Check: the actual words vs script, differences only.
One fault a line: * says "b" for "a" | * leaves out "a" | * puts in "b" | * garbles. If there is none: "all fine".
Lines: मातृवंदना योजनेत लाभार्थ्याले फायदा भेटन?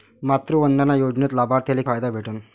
all fine